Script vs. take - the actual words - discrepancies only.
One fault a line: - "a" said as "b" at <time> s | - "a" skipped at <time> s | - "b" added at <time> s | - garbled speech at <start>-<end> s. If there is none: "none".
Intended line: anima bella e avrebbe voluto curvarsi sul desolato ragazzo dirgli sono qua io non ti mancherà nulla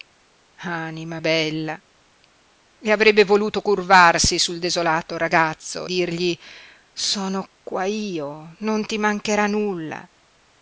none